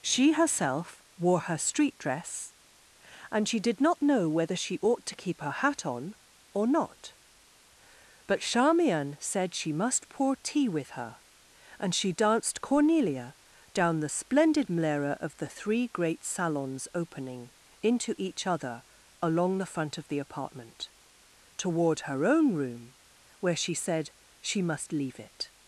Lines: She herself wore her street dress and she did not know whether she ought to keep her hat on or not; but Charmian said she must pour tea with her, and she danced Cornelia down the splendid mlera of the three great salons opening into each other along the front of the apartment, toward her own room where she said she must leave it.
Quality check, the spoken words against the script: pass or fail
pass